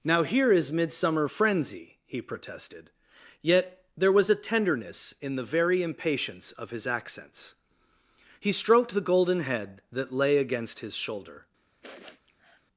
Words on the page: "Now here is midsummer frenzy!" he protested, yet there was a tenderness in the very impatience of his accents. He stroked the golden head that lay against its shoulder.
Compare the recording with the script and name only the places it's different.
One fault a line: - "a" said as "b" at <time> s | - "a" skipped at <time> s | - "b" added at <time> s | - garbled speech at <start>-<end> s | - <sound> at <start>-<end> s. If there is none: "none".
- "its" said as "his" at 10.8 s
- sniff at 11.8-12.6 s